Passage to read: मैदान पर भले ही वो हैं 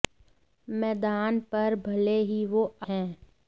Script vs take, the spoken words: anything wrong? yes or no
no